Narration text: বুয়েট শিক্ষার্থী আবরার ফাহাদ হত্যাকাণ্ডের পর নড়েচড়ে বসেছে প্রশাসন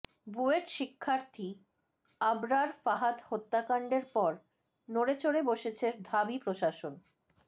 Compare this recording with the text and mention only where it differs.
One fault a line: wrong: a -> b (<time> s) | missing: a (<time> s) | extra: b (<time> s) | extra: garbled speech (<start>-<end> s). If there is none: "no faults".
extra: ঢাবি (6.1 s)